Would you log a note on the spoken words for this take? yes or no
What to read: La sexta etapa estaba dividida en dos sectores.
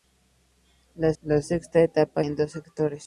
yes